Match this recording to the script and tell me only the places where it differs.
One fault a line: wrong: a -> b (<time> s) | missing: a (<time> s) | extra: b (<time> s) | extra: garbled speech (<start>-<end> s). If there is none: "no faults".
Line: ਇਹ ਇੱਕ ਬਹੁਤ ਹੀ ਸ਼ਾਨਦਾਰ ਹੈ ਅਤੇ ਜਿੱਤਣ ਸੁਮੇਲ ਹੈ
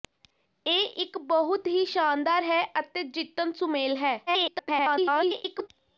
extra: garbled speech (4.3-5.7 s)